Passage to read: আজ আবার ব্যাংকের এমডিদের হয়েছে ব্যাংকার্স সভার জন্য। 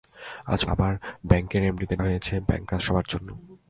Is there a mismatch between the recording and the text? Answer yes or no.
no